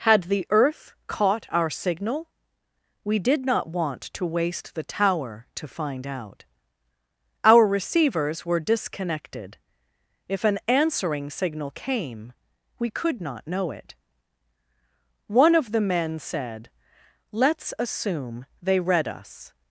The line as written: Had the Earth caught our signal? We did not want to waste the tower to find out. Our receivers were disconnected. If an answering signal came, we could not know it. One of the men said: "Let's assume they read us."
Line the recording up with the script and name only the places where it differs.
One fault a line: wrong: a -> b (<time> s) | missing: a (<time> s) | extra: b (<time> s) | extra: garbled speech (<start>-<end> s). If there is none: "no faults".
no faults